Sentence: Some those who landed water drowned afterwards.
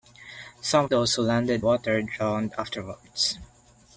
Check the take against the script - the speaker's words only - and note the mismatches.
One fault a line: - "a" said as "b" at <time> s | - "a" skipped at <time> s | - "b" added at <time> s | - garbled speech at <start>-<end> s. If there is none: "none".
none